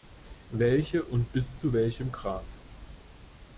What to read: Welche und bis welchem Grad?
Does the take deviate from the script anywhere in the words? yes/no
yes